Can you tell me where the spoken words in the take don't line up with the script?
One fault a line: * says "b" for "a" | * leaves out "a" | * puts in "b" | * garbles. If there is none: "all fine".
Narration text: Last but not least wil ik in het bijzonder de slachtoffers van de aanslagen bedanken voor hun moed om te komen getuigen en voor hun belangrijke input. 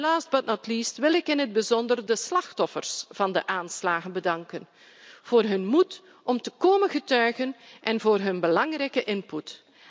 all fine